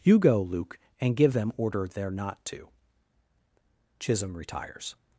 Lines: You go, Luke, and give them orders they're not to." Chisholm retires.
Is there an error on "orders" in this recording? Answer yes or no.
yes